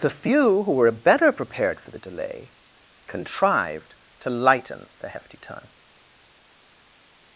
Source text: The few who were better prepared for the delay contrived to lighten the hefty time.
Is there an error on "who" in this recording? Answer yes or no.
no